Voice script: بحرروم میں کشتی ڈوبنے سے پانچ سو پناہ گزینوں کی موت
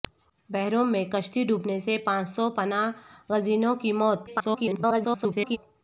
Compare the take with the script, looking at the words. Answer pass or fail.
fail